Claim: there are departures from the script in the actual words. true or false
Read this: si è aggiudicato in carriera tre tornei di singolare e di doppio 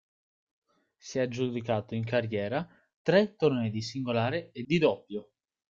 false